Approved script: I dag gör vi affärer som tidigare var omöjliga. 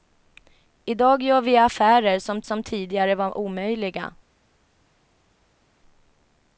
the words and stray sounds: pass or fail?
fail